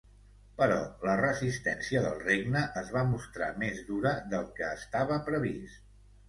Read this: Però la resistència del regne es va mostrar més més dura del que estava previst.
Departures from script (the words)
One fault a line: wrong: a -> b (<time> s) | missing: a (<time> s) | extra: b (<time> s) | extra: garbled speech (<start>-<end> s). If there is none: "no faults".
missing: més (3.8 s)